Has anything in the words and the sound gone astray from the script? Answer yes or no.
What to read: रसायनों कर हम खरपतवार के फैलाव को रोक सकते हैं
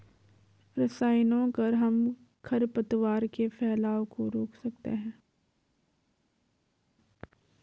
no